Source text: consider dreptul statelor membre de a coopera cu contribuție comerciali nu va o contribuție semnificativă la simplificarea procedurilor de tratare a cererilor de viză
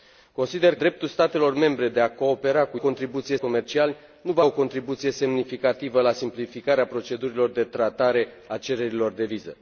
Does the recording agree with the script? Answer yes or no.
yes